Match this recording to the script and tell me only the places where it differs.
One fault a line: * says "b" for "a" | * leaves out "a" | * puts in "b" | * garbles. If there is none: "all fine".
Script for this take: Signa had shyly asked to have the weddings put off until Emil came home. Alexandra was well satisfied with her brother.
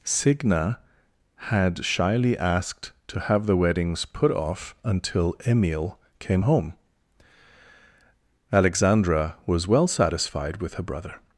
all fine